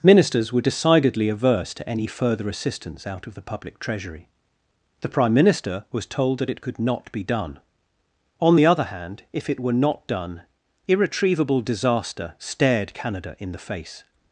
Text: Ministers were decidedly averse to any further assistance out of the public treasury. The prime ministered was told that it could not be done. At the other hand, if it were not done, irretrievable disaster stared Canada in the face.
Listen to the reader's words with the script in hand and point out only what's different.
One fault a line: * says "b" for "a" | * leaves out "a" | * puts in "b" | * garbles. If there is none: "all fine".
* says "minister" for "ministered"
* says "On" for "At"